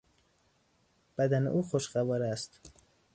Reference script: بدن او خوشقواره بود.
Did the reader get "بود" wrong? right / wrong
wrong